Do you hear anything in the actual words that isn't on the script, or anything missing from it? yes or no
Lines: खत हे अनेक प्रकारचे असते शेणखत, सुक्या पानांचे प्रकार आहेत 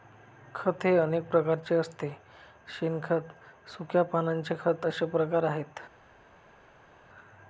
yes